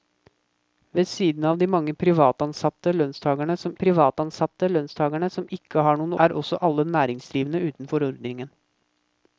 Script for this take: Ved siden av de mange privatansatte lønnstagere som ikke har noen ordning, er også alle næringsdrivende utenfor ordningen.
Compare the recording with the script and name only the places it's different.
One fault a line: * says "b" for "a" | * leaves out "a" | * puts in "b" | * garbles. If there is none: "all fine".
* puts in "privatansatte lønnstagere som"
* leaves out "ordning"